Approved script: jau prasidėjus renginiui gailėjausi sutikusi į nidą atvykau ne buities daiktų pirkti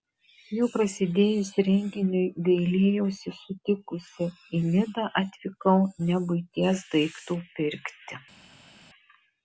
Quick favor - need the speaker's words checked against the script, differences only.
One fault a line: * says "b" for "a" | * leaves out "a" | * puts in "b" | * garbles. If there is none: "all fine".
all fine